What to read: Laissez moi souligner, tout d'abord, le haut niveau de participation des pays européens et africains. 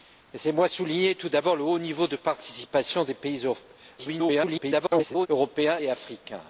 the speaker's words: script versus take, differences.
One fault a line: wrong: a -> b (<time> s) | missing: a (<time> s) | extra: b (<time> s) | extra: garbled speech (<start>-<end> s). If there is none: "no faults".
extra: garbled speech (4.0-5.3 s)